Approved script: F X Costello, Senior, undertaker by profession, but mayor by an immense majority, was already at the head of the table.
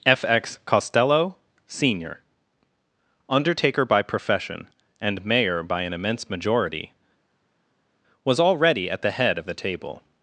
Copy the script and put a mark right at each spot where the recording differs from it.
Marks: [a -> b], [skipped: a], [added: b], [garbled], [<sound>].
F X Costello, Senior, undertaker by profession, [but -> and] mayor by an immense majority, was already at the head of the table.